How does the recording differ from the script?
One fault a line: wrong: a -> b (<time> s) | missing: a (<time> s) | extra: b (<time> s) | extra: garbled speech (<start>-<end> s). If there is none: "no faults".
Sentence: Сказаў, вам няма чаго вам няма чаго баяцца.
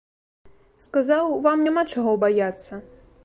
missing: вам няма чаго (2.1 s)